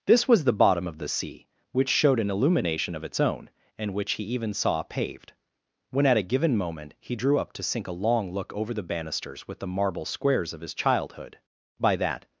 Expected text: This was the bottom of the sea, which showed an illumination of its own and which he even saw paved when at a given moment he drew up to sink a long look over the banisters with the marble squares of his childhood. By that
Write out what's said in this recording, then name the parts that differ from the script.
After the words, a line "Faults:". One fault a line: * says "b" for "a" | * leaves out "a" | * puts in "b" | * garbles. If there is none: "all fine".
This was the bottom of the sea, which showed an illumination of its own and which he even saw paved when at a given moment he drew up to sink a long look over the banisters with the marble squares of his childhood. By that
Faults:
all fine